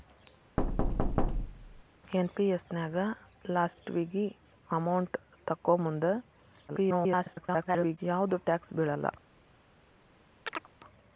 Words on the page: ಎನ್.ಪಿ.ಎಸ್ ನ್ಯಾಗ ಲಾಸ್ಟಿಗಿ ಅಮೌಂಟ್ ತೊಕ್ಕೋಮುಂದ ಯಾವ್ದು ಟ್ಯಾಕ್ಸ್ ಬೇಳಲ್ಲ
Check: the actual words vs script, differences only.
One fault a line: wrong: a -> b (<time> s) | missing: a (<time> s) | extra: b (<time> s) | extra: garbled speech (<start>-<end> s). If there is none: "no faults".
extra: garbled speech (6.7-8.0 s)